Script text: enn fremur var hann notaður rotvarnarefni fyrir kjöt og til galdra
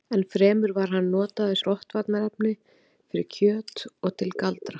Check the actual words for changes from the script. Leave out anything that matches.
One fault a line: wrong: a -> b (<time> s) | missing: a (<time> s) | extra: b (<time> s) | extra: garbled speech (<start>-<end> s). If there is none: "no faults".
no faults